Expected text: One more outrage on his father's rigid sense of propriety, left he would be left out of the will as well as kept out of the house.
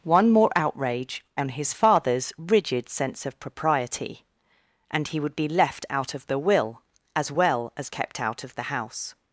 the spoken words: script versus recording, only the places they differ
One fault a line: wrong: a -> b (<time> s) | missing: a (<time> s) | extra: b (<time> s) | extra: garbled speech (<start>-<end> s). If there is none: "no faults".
wrong: left -> and (4.9 s)